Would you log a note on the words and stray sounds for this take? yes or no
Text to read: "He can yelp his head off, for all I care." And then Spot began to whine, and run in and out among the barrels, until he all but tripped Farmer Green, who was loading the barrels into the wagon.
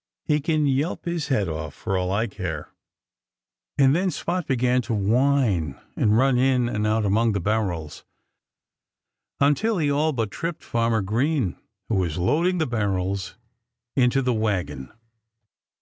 no